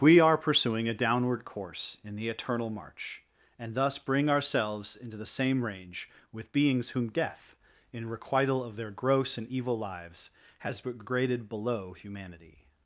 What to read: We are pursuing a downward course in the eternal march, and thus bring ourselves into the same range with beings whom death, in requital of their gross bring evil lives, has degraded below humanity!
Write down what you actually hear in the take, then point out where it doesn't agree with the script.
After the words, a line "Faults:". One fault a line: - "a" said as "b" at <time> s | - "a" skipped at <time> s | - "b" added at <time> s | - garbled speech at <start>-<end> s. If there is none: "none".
We are pursuing a downward course in the eternal march, and thus bring ourselves into the same range with beings whom death, in requital of their gross and evil lives, has degraded below humanity!
Faults:
- "bring" said as "and" at 9.4 s